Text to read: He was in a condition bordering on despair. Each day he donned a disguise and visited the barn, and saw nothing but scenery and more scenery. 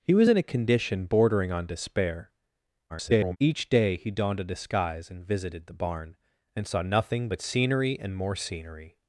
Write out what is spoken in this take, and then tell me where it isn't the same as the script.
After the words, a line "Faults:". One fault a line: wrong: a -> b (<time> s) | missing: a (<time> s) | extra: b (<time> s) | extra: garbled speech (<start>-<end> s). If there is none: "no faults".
He was in a condition bordering on despair. [garbled] Each day he donned a disguise and visited the barn, and saw nothing but scenery and more scenery.
Faults:
extra: garbled speech (2.9-3.4 s)